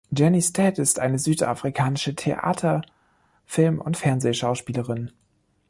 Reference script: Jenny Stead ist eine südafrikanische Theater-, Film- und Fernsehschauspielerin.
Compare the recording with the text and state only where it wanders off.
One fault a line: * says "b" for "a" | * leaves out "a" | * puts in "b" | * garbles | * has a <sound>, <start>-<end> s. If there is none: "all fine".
all fine